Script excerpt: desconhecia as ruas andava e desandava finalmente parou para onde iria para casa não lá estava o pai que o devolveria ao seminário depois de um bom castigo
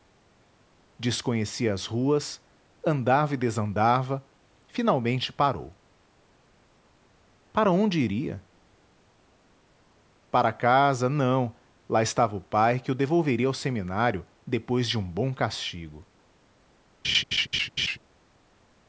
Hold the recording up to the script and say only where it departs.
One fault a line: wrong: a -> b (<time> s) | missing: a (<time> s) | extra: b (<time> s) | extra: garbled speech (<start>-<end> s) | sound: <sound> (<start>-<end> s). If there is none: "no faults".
sound: laugh (17.0-18.0 s)